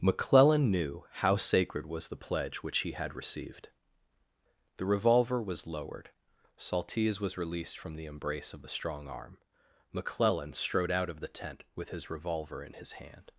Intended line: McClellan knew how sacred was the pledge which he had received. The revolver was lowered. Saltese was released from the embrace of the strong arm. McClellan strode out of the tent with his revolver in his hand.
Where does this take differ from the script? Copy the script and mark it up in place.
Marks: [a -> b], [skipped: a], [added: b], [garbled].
McClellan knew how sacred was the pledge which he had received. The revolver was lowered. Saltese was released from the embrace of the strong arm. McClellan strode out of the tent with his revolver in his hand.